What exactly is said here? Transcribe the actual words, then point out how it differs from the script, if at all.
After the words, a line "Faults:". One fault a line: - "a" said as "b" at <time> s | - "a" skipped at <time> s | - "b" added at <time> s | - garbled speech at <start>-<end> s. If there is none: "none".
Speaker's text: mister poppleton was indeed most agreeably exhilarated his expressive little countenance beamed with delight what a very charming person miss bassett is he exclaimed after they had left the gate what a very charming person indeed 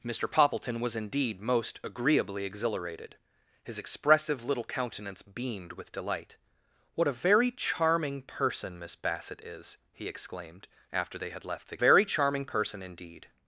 mister poppleton was indeed most agreeably exhilarated his expressive little countenance beamed with delight what a very charming person miss bassett is he exclaimed after they had left the very charming person indeed
Faults:
- "gate what a" skipped at 11.8 s